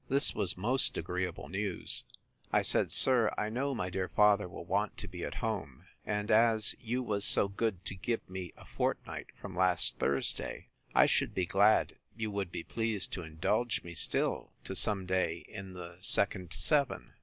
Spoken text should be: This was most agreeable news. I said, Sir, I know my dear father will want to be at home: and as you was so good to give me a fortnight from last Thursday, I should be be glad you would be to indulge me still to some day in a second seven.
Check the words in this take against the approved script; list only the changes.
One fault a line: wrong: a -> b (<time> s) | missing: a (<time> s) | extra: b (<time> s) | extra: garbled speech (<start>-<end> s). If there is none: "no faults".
missing: be (11.5 s)
extra: pleased (12.6 s)
wrong: a -> the (15.7 s)